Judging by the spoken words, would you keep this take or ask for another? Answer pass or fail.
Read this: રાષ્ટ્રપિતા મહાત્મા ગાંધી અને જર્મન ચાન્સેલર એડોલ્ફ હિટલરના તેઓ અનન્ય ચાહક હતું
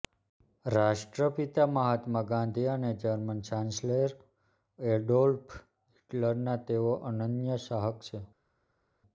fail